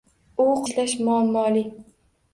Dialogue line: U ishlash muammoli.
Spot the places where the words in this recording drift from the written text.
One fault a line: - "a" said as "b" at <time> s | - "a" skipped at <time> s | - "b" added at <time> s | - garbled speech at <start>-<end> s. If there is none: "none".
none